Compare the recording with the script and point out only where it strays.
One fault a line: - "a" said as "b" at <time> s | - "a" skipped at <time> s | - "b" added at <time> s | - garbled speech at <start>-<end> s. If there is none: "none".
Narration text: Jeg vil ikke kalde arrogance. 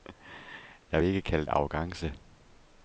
none